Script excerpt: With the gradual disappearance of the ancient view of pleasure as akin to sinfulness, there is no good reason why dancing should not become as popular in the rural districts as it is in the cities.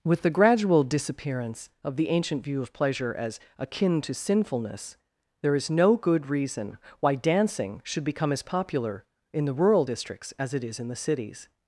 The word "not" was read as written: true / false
false